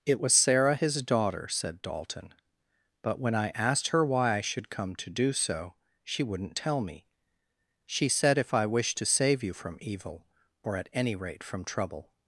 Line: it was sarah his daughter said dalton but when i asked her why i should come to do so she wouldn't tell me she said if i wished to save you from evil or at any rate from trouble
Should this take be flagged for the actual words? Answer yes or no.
no